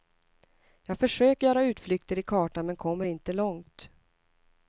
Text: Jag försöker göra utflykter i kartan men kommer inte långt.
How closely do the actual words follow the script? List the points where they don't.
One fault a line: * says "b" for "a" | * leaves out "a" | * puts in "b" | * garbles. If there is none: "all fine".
all fine